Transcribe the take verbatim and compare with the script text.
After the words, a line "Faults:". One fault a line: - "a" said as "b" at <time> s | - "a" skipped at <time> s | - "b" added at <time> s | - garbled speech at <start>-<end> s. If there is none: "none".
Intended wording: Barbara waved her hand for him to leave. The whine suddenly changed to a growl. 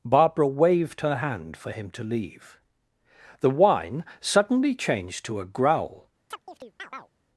Barbara waved her hand for him to leave. The whine suddenly changed to a growl.
Faults:
none